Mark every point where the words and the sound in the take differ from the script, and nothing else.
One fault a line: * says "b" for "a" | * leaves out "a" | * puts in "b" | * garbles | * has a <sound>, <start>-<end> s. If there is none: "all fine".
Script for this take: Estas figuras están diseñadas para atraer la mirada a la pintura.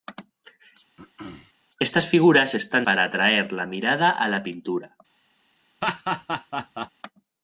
* has a throat clearing, 1.0-1.5 s
* leaves out "diseñadas"
* has a laugh, 5.8-6.9 s